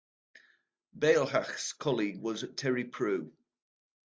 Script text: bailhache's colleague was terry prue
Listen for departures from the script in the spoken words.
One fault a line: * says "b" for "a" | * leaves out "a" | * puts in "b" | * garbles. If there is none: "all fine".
all fine